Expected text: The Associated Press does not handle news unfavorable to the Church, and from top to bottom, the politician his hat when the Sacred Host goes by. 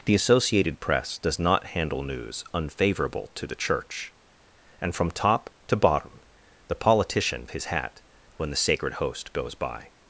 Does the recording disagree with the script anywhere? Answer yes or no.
no